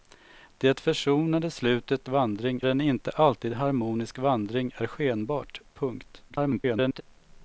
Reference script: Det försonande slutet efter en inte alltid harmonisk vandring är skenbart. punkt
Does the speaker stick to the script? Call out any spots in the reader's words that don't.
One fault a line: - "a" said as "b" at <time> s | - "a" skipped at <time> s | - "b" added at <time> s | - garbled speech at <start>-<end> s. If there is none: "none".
- "efter" said as "vandring" at 2.1 s
- garbled speech at 6.3-7.0 s